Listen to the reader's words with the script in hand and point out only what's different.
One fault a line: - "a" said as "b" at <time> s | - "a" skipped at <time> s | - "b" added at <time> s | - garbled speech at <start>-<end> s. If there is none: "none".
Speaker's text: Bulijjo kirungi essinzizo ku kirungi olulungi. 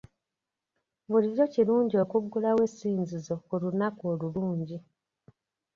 - "okuggulawo" added at 2.0 s
- "kirungi" said as "lunaku" at 3.6 s